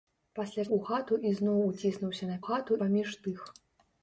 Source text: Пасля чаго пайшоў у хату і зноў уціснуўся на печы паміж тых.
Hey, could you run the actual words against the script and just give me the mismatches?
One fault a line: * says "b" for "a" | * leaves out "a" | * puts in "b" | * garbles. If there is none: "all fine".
* leaves out "чаго пайшоў"
* says "хату" for "печы"